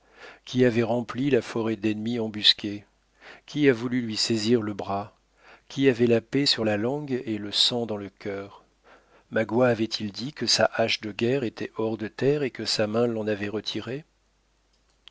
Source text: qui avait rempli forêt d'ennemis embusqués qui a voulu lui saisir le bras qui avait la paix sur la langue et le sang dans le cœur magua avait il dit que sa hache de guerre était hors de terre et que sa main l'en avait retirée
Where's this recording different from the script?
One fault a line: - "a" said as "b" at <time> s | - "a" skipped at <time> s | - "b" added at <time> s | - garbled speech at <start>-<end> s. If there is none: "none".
- "la" added at 1.3 s